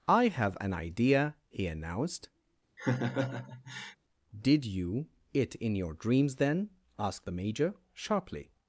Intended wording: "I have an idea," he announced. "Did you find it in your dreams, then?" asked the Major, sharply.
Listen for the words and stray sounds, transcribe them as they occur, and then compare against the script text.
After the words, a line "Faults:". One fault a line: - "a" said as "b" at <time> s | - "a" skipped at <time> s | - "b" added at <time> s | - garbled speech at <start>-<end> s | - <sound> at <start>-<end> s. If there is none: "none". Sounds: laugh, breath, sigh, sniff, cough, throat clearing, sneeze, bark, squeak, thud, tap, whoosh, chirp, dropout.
"I have an idea," he announced. "Did you it in your dreams, then?" asked the Major, sharply.
Faults:
- laugh at 2.8-4.0 s
- "find" skipped at 5.1 s